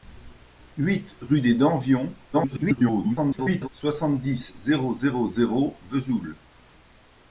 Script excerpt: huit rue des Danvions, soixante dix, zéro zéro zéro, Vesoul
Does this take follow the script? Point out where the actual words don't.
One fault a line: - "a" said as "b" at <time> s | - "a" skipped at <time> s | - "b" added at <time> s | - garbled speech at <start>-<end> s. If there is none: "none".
- garbled speech at 2.3-3.7 s